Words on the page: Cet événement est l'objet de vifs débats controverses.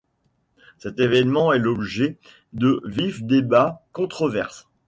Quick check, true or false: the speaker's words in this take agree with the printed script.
true